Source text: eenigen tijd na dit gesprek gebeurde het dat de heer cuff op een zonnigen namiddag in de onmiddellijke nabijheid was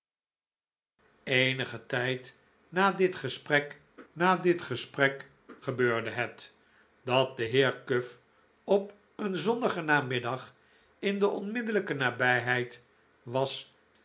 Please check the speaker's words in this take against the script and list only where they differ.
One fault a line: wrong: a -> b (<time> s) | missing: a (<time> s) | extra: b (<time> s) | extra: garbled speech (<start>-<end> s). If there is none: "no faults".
extra: na dit gesprek (4.1 s)